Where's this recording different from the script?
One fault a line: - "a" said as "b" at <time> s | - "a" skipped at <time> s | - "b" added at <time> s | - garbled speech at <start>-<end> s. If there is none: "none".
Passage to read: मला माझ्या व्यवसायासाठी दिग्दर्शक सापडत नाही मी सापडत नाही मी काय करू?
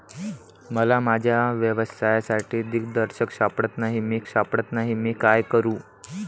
none